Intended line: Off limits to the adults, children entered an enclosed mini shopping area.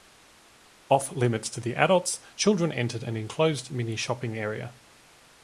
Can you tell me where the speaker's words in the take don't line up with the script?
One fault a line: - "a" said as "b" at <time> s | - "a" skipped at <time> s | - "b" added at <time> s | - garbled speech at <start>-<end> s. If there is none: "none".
none